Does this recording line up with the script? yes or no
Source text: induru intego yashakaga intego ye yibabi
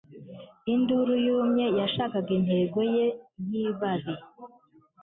no